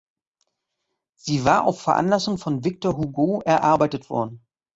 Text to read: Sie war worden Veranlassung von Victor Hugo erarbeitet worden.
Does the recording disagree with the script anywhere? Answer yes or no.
yes